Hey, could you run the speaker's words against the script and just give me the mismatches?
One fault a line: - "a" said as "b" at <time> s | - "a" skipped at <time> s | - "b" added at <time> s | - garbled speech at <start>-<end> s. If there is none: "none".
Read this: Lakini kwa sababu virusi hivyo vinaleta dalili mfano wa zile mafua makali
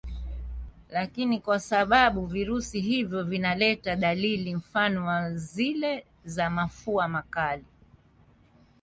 - "za" added at 6.2 s